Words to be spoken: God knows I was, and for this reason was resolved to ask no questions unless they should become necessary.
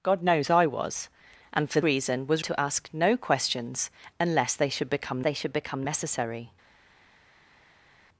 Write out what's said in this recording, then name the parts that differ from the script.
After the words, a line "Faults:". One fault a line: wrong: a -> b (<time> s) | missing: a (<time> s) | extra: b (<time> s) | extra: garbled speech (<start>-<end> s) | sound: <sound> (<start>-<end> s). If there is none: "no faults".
God knows I was, and for reason was to ask no questions unless they should become they should become necessary.
Faults:
missing: this (1.8 s)
missing: resolved (2.4 s)
extra: they should become (5.2 s)